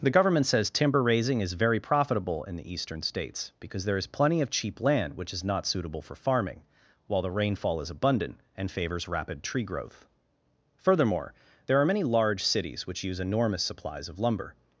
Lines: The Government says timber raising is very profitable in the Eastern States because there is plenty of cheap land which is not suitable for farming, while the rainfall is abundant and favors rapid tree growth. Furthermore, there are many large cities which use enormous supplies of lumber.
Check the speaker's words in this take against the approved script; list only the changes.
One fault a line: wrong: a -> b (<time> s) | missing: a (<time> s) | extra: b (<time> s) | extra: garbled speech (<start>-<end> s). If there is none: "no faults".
no faults